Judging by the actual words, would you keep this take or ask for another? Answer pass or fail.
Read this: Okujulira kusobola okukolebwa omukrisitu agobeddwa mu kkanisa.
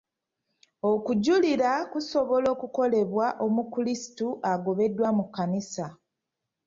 pass